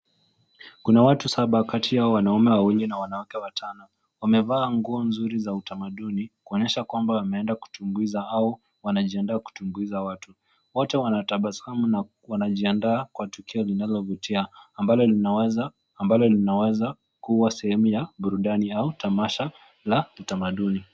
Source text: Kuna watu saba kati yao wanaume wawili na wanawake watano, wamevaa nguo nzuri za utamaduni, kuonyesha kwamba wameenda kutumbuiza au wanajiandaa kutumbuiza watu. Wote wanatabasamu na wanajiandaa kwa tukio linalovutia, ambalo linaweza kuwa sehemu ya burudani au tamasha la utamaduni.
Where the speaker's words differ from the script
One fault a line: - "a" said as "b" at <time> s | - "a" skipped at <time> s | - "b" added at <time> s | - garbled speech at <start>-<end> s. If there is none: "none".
- "ambalo linaweza" added at 16.0 s